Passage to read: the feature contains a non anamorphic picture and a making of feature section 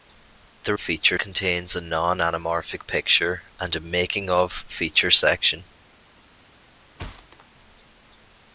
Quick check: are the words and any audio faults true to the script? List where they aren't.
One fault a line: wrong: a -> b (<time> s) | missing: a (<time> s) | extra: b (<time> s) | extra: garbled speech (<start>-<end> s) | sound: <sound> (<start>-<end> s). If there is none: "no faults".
sound: thud (7.0-7.5 s)